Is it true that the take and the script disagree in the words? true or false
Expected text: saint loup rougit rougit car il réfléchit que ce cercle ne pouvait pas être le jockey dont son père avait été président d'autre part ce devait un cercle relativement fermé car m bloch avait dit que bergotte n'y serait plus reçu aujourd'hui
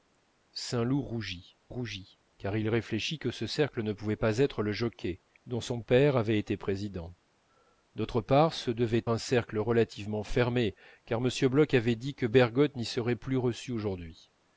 false